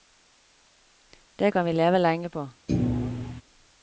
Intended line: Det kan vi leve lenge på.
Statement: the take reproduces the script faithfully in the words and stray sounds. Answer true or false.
false